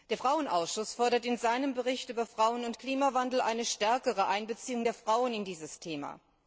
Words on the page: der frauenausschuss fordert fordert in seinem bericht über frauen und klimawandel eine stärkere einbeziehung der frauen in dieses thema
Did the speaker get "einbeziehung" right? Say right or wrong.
right